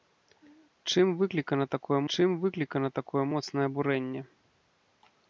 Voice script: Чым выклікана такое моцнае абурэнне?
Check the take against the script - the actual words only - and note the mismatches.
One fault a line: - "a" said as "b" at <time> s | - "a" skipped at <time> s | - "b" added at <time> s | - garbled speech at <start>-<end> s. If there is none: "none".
- "чым выклікана такое" added at 2.2 s